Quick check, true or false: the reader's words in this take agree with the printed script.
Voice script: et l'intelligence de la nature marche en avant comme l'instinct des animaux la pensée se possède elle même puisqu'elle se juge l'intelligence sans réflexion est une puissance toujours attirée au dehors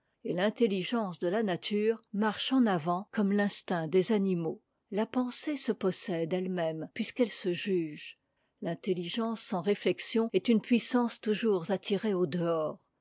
true